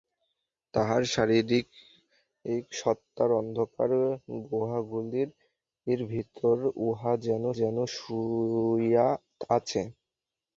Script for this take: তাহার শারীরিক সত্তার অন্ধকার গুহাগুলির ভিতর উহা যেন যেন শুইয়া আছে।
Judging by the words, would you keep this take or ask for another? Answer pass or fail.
pass